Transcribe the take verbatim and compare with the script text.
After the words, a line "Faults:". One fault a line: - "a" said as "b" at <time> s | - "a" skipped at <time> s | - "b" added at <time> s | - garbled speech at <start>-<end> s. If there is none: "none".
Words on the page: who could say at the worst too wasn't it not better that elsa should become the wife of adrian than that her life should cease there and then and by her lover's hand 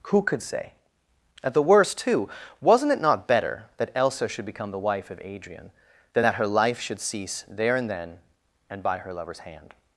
who could say at the worst too wasn't it not better that elsa should become the wife of adrian than that her life should cease there and then and by her lover's hand
Faults:
none